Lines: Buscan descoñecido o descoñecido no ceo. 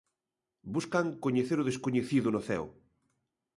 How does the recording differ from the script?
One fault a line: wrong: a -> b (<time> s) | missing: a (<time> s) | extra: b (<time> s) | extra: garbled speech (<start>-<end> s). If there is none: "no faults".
wrong: descoñecido -> coñecer (1.2 s)